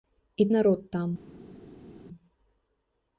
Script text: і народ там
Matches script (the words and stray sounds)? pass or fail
pass